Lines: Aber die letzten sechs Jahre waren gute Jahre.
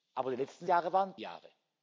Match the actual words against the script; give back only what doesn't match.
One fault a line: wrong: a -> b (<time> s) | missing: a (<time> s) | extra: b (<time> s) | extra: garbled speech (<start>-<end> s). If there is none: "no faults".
missing: sechs (0.7 s)
missing: gute (1.1 s)